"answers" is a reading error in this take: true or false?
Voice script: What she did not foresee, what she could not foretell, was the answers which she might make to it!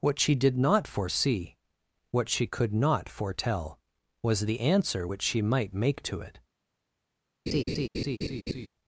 true